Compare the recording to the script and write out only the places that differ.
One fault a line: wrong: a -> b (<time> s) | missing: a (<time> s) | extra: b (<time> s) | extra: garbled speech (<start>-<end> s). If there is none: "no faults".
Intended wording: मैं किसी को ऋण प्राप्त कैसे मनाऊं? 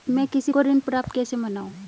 no faults